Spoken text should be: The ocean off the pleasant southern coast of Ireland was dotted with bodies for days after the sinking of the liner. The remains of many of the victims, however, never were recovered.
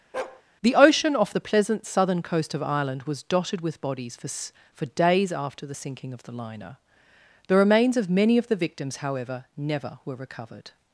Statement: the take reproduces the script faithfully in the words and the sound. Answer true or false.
false